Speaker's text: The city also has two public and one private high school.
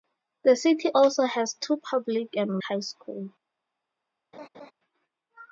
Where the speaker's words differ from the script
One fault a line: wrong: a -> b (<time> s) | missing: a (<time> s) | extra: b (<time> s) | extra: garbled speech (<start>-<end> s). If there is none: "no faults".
missing: one private (2.6 s)